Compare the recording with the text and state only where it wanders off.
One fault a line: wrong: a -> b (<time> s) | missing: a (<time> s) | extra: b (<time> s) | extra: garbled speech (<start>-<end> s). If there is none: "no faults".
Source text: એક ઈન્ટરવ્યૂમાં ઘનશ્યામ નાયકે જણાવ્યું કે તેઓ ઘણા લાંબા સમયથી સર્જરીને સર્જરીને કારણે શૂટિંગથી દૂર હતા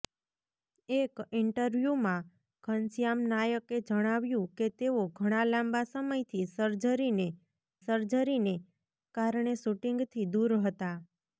no faults